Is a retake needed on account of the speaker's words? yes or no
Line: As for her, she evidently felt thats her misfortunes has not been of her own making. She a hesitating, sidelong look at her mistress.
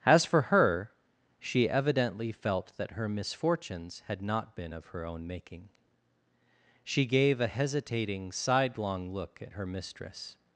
yes